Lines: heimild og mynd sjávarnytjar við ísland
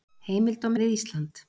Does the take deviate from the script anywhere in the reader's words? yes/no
yes